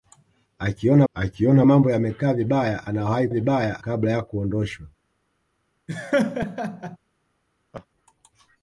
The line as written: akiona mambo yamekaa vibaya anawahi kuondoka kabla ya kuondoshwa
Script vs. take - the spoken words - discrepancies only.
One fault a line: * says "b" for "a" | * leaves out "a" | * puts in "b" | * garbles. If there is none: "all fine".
* puts in "akiona"
* says "vibaya" for "kuondoka"